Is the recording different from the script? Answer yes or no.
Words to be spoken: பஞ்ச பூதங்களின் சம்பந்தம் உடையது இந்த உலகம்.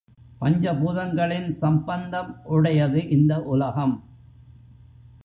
no